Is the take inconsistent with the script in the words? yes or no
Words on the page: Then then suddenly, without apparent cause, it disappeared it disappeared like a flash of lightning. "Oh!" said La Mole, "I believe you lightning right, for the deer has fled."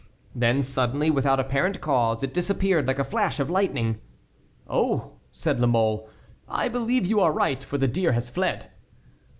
yes